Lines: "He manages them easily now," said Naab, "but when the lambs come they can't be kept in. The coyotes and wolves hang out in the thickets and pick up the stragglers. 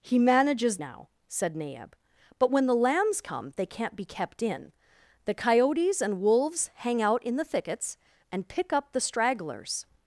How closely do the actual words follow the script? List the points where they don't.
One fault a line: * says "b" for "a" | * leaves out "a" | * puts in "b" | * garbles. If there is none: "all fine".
* leaves out "them easily"